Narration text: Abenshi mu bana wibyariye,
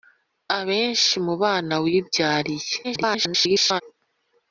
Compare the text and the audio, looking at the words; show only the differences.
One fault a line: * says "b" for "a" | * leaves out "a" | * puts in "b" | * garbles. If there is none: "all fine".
* garbles